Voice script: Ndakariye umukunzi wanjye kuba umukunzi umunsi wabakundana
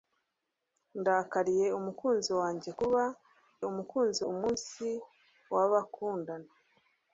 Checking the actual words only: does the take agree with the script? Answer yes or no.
yes